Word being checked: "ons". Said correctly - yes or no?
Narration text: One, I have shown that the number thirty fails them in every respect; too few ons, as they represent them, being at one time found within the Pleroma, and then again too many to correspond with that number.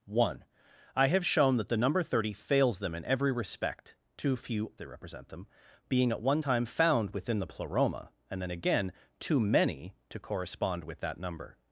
no